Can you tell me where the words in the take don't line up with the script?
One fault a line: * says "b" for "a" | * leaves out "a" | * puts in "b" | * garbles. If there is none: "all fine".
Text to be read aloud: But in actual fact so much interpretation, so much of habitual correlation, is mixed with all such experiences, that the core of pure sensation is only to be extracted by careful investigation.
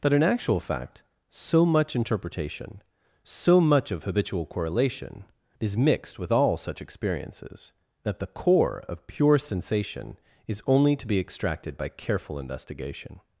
all fine